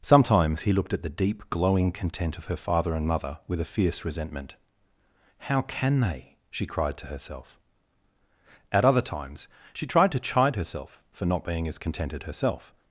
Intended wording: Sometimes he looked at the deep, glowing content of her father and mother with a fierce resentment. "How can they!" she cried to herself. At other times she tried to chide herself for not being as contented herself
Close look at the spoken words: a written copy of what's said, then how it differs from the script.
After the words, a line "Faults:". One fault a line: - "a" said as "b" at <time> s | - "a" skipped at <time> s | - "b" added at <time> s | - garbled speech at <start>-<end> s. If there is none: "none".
Sometimes he looked at the deep, glowing content of her father and mother with a fierce resentment. "How can they!" she cried to herself. At other times she tried to chide herself for not being as contented herself
Faults:
none